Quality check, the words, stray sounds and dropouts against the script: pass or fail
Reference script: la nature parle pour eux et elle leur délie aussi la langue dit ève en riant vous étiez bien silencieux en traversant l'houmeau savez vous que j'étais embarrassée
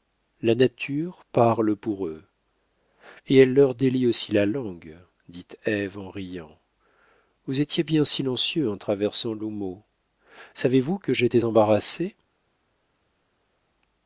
pass